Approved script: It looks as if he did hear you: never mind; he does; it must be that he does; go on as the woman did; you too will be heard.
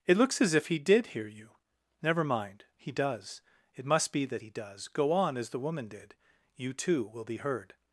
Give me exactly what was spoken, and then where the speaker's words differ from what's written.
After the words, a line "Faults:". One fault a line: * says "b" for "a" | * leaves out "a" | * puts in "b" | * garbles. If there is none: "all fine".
It looks as if he did hear you: never mind; he does; it must be that he does; go on as the woman did; you too will be heard.
Faults:
all fine